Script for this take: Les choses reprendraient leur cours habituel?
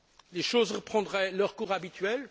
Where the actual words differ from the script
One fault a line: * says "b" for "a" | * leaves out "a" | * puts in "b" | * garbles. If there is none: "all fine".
all fine